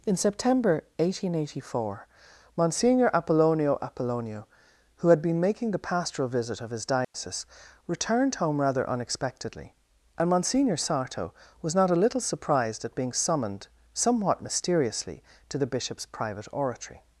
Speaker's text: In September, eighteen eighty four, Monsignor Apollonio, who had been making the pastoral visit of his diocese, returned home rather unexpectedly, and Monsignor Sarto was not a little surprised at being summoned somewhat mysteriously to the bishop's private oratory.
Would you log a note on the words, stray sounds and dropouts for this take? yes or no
yes